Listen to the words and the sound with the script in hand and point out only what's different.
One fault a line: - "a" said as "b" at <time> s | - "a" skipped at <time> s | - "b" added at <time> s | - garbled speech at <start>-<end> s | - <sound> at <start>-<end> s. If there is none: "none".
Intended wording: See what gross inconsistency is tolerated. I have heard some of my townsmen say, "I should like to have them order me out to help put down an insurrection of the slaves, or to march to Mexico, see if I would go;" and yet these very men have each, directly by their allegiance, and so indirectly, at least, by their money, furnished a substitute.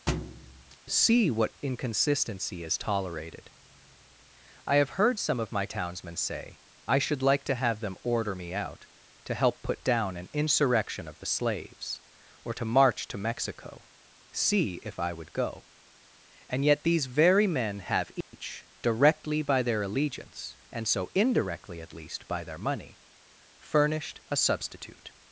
- thud at 0.1-0.8 s
- "gross" skipped at 1.6 s
- dropout at 18.2-18.3 s